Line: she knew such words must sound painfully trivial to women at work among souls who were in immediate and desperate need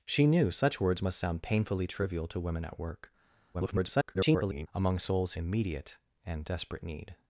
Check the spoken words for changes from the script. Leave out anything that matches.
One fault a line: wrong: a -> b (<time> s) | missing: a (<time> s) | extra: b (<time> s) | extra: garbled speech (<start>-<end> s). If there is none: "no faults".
extra: garbled speech (3.5-4.7 s)
missing: who were in (5.3 s)